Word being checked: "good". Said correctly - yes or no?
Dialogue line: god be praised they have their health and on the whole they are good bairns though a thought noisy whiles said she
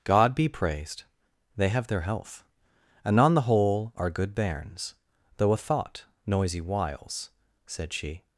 yes